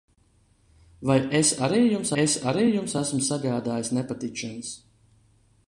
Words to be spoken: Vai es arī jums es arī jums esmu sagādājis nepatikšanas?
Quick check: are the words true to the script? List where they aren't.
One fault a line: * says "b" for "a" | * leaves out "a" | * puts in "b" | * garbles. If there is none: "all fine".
all fine